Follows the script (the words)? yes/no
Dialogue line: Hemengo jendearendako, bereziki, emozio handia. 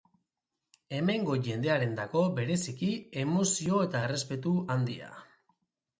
no